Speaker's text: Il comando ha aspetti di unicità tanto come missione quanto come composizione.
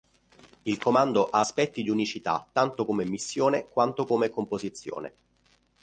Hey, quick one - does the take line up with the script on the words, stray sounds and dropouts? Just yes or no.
yes